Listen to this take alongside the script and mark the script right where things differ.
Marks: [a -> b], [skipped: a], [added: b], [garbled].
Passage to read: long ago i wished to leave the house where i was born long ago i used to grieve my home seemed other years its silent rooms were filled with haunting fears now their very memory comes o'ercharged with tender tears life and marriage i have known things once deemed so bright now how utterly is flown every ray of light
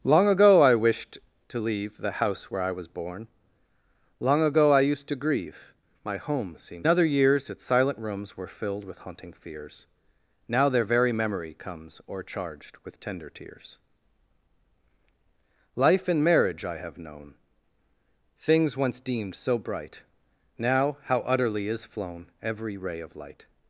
long ago i wished to leave the house where i was born long ago i used to grieve my home seemed other years its silent rooms were filled with haunting fears now their very memory comes o'ercharged with tender tears life and marriage i have known things once deemed so bright now how utterly is flown every ray of light